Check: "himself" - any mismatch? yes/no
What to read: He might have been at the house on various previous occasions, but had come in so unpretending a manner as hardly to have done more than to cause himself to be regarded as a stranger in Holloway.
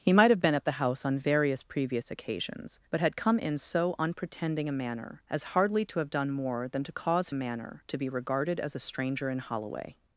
yes